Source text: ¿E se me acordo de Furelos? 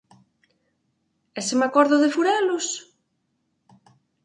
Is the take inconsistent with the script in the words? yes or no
no